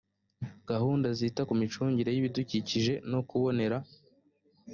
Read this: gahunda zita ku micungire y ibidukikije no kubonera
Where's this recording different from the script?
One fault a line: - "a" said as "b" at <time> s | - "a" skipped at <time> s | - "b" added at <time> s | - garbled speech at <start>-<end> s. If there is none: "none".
none